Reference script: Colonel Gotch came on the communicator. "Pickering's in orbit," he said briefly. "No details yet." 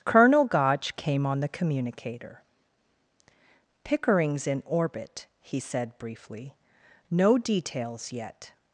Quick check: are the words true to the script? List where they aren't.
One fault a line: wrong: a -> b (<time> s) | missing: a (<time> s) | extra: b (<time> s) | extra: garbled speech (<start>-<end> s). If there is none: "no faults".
no faults